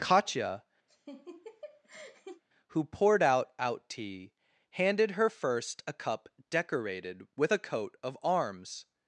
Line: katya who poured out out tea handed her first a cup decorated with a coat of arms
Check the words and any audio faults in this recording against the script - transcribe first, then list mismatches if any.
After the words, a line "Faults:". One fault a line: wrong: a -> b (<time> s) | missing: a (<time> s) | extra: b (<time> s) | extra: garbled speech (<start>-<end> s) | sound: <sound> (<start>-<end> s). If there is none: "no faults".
katya who poured out out tea handed her first a cup decorated with a coat of arms
Faults:
sound: laugh (0.9-2.4 s)